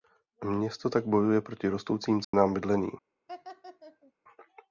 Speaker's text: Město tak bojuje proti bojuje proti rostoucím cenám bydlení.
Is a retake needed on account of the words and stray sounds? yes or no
yes